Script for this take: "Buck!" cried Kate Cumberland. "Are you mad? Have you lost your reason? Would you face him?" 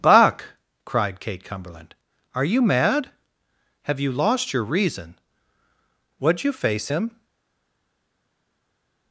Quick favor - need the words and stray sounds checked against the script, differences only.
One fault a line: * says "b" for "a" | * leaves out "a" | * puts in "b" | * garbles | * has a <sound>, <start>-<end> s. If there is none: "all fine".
all fine